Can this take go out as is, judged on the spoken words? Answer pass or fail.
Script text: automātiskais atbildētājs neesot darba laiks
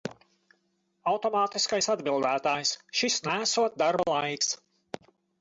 fail